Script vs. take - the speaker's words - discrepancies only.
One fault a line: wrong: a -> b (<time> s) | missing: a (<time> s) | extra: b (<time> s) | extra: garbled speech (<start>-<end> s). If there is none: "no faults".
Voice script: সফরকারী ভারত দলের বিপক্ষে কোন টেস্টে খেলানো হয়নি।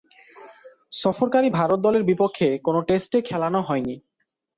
no faults